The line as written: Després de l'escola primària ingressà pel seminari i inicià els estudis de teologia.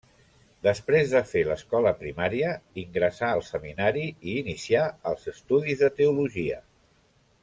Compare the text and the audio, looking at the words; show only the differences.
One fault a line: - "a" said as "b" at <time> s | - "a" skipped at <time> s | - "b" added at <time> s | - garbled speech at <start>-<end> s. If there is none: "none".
- "fer" added at 1.3 s
- "pel" said as "al" at 3.3 s